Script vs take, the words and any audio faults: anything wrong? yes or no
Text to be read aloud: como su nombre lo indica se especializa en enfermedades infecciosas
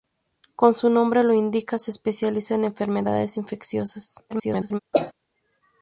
yes